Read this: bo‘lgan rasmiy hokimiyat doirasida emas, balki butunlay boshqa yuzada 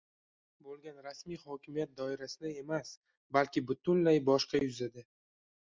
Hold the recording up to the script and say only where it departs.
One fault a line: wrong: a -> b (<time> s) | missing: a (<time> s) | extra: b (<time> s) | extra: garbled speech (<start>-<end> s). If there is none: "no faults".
no faults